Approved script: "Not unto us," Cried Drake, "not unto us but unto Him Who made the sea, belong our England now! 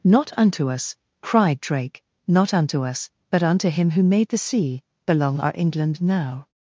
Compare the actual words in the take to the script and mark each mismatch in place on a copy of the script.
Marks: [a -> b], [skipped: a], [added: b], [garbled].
"Not unto us," Cried Drake, "not unto us but unto Him Who made the sea, belong our England now!